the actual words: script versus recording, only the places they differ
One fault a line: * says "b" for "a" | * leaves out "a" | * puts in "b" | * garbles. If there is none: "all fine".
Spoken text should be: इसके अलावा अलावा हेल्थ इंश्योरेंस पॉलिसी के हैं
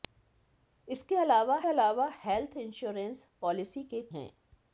all fine